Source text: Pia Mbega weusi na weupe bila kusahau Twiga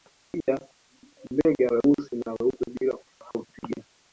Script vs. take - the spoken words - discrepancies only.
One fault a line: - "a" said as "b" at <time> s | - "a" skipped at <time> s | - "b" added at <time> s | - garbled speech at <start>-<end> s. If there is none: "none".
none